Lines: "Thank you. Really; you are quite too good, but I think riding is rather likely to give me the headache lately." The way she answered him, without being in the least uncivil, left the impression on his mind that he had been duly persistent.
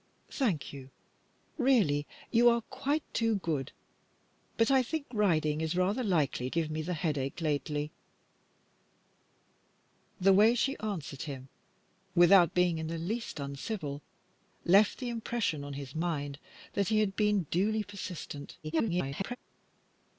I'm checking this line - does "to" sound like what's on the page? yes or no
no